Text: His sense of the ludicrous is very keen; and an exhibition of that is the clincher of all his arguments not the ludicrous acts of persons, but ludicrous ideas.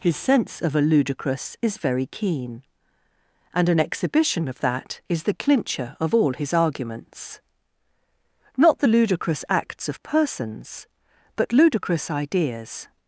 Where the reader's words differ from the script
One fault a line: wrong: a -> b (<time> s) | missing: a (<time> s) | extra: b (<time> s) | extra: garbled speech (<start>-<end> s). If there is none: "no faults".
wrong: the -> a (0.8 s)